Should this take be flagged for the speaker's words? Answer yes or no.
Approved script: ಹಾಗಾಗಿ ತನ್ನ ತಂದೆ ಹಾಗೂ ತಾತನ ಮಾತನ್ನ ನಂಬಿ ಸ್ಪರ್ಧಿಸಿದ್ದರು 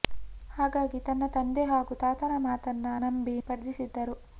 no